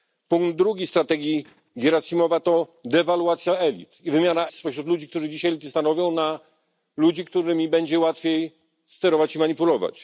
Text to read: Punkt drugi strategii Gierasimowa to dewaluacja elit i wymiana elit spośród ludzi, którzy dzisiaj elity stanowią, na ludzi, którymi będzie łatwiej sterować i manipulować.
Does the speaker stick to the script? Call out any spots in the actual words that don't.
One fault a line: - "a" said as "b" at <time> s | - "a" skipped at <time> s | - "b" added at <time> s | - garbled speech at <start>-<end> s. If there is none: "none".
- "elit" skipped at 4.5 s